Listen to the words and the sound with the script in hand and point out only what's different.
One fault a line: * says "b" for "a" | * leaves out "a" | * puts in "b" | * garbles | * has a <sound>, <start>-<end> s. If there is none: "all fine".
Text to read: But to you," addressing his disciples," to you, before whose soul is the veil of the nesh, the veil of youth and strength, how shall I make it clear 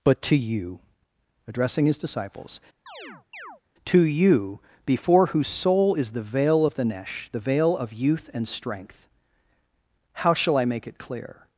* has a chirp, 2.9-3.6 s